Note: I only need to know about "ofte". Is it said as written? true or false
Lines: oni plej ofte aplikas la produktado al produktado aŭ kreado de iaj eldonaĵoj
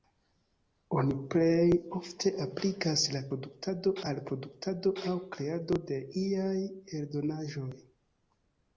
true